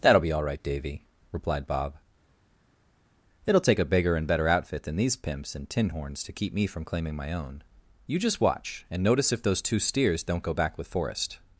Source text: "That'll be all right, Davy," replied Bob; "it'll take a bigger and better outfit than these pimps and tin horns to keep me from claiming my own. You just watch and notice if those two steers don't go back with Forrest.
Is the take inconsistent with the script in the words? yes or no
no